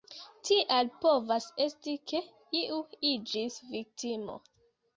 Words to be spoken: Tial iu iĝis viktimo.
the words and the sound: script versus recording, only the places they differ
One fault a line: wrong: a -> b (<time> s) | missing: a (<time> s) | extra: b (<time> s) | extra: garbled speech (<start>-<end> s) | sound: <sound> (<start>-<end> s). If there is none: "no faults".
extra: povas esti ke (1.0 s)